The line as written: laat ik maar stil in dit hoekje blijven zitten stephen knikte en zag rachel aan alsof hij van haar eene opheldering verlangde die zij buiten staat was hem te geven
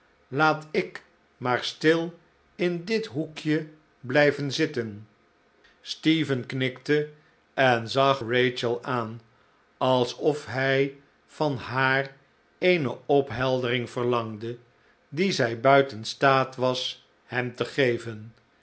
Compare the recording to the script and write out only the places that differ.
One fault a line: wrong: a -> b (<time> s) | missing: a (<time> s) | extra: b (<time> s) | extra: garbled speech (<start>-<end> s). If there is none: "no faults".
no faults